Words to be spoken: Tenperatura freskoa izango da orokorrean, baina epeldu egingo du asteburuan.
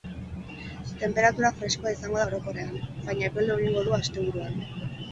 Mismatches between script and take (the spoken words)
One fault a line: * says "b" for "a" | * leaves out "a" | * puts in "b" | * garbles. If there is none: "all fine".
all fine